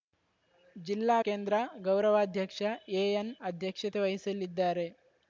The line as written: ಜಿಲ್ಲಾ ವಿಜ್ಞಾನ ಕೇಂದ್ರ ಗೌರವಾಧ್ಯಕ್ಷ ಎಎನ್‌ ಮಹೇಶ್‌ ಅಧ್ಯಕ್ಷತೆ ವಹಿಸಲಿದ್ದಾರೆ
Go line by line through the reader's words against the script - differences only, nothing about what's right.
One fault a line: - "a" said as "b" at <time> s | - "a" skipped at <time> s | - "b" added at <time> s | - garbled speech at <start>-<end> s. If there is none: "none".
- "ವಿಜ್ಞಾನ" skipped at 1.2 s
- "ಮಹೇಶ್" skipped at 3.3 s